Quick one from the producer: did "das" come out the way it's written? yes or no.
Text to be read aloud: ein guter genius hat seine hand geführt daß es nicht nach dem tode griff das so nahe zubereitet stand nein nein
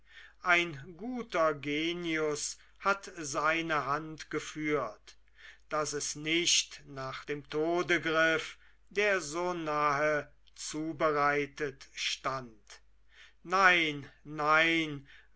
no